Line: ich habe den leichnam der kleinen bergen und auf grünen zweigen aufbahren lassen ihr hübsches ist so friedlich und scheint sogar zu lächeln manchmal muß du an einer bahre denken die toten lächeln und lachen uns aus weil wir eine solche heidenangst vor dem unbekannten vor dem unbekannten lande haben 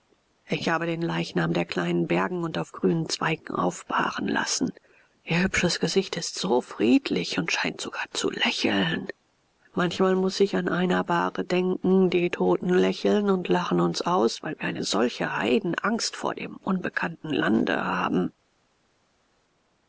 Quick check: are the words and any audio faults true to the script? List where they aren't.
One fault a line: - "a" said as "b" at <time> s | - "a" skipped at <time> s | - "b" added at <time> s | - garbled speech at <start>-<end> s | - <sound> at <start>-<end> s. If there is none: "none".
- "gesicht" added at 5.8 s
- "du" said as "ich" at 10.4 s
- "vor dem unbekannten" skipped at 17.3 s